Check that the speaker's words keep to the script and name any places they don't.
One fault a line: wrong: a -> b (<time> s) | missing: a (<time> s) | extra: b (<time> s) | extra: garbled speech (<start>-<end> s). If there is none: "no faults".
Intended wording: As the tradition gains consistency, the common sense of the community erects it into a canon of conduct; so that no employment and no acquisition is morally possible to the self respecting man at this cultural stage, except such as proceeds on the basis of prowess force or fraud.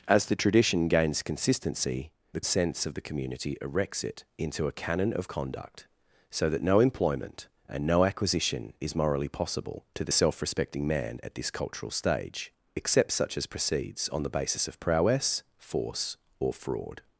missing: common (2.4 s)